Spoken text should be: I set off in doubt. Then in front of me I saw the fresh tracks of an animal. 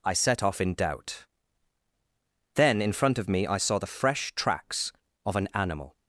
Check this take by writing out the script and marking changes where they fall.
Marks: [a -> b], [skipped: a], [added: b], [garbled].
I set off in doubt. Then in front of me I saw the fresh tracks of an animal.